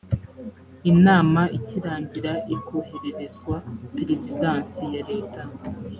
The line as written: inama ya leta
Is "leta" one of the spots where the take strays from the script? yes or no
no